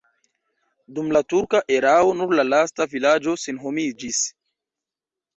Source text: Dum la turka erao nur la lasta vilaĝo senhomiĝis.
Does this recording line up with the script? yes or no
yes